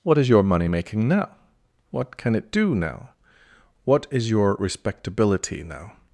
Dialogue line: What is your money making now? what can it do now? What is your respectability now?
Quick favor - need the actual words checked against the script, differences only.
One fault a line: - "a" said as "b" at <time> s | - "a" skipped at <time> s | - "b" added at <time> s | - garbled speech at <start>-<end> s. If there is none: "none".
none